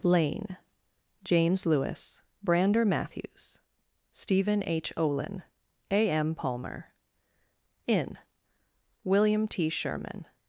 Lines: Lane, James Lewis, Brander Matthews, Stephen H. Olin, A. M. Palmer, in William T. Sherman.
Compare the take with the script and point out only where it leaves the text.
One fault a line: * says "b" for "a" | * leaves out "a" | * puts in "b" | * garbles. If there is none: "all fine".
all fine